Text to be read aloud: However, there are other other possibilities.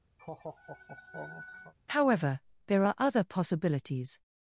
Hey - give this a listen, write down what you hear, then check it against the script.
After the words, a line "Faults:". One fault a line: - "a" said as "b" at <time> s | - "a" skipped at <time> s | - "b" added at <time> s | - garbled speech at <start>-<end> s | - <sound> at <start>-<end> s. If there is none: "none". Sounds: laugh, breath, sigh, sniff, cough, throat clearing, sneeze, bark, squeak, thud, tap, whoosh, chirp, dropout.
However, there are other possibilities.
Faults:
- laugh at 0.2-1.7 s
- "other" skipped at 3.2 s